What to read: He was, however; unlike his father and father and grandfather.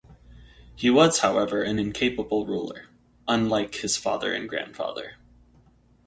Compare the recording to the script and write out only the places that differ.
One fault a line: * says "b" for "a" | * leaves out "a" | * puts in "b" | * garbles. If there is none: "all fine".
* puts in "an incapable ruler"
* leaves out "father and"